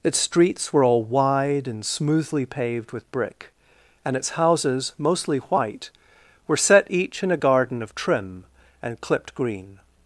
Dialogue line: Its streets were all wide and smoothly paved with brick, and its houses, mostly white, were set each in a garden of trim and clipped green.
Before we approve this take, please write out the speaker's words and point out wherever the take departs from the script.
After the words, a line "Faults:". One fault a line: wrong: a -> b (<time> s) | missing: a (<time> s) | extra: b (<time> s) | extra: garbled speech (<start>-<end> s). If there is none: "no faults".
Its streets were all wide and smoothly paved with brick, and its houses, mostly white, were set each in a garden of trim and clipped green.
Faults:
no faults